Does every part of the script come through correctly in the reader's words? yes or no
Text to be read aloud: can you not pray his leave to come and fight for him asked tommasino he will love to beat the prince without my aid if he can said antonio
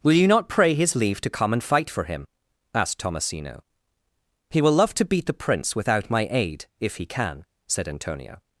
no